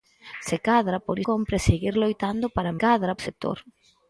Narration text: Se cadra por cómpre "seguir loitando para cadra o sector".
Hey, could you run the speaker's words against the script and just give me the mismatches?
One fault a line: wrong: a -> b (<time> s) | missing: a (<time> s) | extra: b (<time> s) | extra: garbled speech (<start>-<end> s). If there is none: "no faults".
no faults